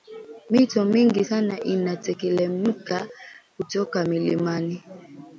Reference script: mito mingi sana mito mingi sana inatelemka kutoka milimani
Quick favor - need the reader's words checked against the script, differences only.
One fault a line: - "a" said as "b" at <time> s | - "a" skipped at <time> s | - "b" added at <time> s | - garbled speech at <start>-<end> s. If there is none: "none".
- "mito mingi sana" skipped at 1.6 s